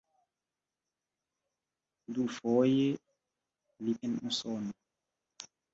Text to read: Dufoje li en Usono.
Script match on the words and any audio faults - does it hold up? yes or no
yes